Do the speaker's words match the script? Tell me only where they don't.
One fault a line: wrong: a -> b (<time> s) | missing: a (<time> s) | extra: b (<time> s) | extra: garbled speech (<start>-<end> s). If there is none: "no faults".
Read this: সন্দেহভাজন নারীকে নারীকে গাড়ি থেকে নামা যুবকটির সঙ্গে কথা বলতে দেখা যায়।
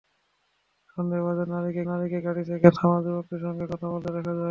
no faults